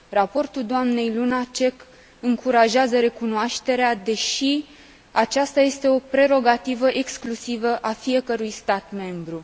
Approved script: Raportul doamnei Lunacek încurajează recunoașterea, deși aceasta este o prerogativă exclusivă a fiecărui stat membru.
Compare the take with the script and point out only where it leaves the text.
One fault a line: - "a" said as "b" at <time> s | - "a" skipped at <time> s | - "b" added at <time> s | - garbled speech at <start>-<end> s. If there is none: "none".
none